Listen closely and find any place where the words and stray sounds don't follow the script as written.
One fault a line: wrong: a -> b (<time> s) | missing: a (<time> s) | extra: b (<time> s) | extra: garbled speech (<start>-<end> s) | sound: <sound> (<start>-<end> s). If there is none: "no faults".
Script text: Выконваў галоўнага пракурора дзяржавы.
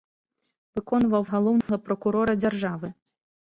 sound: dropout (1.6-1.7 s)